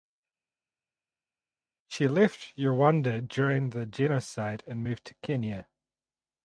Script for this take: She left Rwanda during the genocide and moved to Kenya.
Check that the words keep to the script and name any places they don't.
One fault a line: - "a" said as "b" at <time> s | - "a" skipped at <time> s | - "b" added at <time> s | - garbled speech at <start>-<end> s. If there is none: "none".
none